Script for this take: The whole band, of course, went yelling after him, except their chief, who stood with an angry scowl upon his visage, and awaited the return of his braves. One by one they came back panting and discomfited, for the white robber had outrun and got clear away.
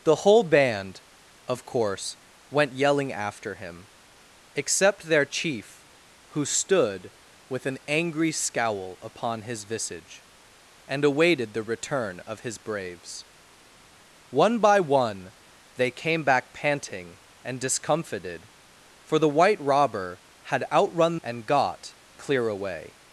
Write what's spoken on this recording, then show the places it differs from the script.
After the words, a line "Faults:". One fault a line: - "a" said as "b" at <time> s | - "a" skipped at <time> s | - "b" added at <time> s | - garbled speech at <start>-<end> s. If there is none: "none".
The whole band, of course, went yelling after him, except their chief, who stood with an angry scowl upon his visage, and awaited the return of his braves. One by one they came back panting and discomfited, for the white robber had outrun and got clear away.
Faults:
none